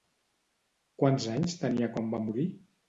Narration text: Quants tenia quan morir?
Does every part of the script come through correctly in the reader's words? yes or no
no